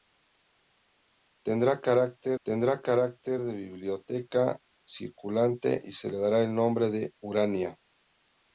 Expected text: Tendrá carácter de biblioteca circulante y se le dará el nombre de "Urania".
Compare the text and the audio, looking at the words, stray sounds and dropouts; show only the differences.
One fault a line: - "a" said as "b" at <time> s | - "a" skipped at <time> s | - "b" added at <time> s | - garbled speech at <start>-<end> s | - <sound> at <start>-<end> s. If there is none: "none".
- "tendrá carácter" added at 2.5 s